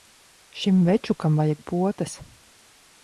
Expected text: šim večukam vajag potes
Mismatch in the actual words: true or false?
false